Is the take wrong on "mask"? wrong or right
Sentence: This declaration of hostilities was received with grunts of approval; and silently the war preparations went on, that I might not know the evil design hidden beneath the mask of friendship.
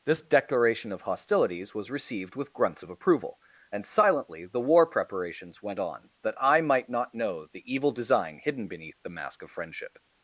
right